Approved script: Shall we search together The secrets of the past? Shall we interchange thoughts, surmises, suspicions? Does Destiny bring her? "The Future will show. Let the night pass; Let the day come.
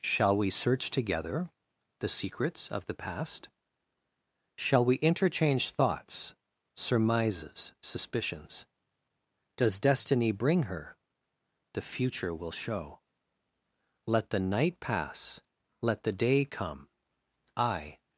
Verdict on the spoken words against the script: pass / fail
fail